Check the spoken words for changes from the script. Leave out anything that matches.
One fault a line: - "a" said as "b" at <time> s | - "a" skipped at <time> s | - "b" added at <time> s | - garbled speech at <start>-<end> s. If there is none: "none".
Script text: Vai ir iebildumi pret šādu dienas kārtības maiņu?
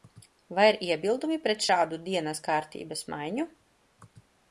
none